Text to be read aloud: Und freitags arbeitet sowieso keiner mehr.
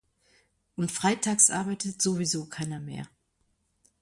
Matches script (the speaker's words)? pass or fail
pass